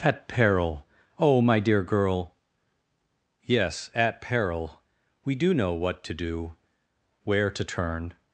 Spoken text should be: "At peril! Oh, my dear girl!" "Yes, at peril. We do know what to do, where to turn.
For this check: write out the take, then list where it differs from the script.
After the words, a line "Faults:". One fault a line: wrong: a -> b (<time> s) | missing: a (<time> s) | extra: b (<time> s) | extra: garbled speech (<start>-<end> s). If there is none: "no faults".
"At peril! Oh, my dear girl!" "Yes, at peril. We do know what to do, where to turn.
Faults:
no faults